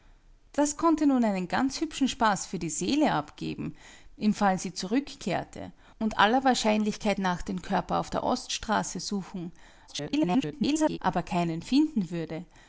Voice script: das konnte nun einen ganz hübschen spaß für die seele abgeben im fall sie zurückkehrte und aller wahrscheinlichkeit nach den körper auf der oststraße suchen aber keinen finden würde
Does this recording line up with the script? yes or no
no